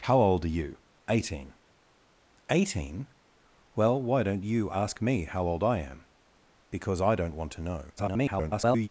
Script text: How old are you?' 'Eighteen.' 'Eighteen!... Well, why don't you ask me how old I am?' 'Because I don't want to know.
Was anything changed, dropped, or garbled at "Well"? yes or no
no